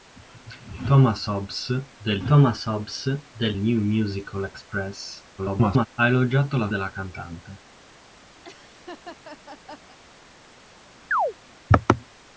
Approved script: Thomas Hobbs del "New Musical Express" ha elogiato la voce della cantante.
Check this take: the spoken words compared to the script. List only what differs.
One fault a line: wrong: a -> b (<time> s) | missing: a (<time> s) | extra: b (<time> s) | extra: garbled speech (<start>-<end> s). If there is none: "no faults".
extra: thomas Hobbs del (2.3 s)
extra: garbled speech (5.4-5.9 s)
missing: voce (6.7 s)